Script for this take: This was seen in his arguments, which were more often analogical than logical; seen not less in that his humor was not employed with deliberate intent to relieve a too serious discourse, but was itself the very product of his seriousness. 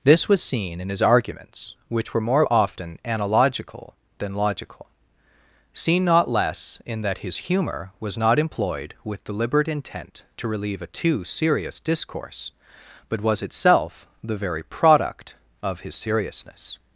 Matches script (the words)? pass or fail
pass